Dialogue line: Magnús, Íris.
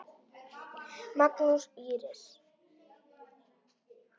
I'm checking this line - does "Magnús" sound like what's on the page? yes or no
yes